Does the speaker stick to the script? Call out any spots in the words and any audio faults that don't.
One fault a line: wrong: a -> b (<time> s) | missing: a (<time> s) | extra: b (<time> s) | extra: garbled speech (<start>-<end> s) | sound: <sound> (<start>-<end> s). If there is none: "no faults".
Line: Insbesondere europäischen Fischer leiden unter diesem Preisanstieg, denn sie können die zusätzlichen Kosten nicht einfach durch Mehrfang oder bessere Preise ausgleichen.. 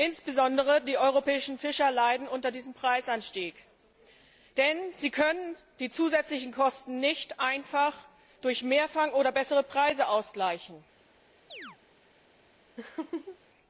extra: die (0.8 s)
sound: chirp (11.5-11.8 s)
sound: laugh (12.8-13.4 s)